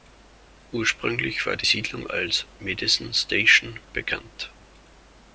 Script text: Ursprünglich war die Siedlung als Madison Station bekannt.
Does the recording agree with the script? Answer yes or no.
yes